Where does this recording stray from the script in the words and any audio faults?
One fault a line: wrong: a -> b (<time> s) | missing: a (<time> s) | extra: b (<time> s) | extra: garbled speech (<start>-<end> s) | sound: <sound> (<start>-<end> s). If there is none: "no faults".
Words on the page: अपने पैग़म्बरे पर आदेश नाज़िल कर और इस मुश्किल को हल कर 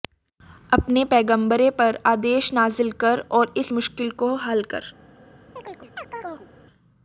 sound: chirp (5.6-6.5 s)